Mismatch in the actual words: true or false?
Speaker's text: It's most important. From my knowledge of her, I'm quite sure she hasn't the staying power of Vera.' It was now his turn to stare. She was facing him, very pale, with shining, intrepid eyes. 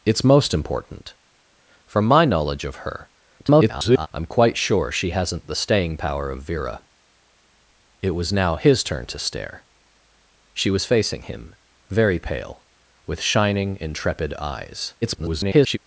true